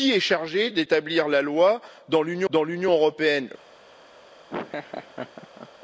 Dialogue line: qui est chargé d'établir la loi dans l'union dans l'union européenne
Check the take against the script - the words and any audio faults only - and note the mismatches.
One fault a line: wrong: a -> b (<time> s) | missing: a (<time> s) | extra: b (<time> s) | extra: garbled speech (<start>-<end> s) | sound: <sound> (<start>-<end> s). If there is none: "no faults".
sound: laugh (4.5-5.7 s)